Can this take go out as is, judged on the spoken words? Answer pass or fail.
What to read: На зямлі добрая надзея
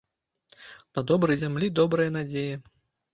fail